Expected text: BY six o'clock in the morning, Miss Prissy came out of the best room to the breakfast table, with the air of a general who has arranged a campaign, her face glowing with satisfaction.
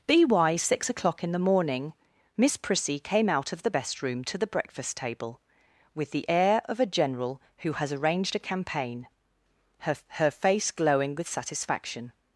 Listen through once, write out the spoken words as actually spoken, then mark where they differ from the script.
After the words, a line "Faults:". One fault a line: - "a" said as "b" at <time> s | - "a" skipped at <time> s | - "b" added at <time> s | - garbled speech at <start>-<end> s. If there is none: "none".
BY six o'clock in the morning, Miss Prissy came out of the best room to the breakfast table, with the air of a general who has arranged a campaign, her her face glowing with satisfaction.
Faults:
- "her" added at 10.1 s